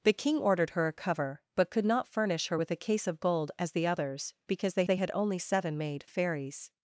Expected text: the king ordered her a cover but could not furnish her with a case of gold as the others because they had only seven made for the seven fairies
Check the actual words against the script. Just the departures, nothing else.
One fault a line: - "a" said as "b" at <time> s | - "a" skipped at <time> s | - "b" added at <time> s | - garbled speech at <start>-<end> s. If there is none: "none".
- "they" added at 4.8 s
- "for the seven" skipped at 6.0 s